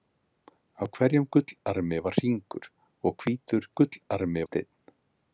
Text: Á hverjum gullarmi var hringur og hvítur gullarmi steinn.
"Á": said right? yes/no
yes